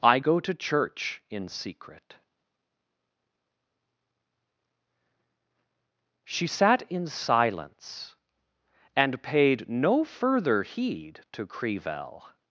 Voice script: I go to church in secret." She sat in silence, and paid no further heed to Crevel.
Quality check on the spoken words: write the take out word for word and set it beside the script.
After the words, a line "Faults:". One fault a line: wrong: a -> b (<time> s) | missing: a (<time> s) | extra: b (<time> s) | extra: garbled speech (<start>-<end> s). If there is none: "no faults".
I go to church in secret." She sat in silence, and paid no further heed to Crevel.
Faults:
no faults